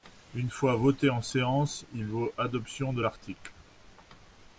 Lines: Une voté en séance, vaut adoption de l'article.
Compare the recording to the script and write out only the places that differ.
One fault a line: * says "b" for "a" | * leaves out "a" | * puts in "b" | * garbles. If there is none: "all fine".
* puts in "fois"
* puts in "il"